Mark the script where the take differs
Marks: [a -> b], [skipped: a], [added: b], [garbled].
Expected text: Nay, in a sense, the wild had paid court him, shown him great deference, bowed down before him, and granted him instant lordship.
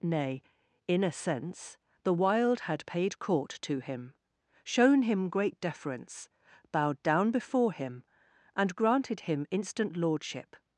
Nay, in a sense, the wild had paid court [added: to] him, shown him great deference, bowed down before him, and granted him instant lordship.